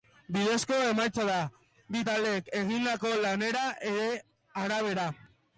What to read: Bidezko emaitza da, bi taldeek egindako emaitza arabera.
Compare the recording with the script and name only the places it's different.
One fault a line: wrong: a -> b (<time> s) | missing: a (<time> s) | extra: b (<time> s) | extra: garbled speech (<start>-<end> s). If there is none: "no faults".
wrong: emaitza -> lanaren (3.2 s)